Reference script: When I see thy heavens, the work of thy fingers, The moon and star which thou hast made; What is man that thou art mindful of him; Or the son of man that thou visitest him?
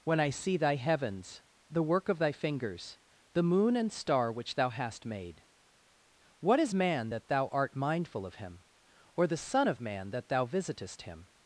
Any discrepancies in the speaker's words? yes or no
no